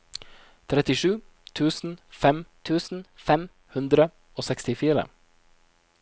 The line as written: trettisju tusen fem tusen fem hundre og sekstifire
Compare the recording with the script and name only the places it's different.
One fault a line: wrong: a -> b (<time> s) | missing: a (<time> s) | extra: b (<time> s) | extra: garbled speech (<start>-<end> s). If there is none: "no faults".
no faults